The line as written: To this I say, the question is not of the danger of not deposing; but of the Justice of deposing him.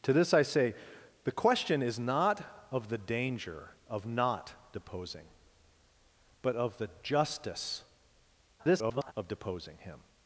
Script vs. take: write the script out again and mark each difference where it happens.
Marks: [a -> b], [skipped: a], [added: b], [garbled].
To this I say, the question is not of the danger of not deposing; but of the Justice [garbled] of deposing him.